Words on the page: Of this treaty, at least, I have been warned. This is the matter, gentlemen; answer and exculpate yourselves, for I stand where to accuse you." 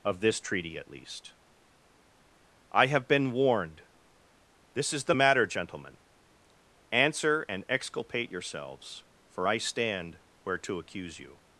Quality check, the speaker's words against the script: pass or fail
pass